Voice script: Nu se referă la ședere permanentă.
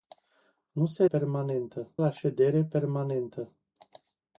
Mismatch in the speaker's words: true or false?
true